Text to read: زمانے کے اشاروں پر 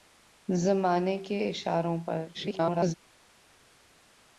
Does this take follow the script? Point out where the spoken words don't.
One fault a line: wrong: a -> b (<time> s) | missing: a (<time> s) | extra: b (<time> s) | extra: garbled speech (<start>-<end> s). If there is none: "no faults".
extra: garbled speech (2.3-2.9 s)